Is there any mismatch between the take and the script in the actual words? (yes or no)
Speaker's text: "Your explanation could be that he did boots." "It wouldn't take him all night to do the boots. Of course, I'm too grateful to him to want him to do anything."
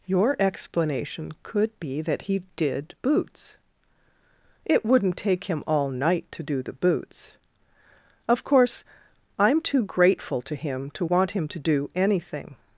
no